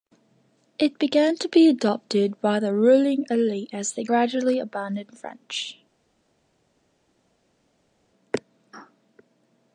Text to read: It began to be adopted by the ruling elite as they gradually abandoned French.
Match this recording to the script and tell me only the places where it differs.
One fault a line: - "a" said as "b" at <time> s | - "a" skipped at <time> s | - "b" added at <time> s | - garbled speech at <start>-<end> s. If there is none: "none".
none